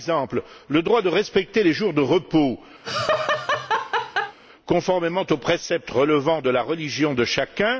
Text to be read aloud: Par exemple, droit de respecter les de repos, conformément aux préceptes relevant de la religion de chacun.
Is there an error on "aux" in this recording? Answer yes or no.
no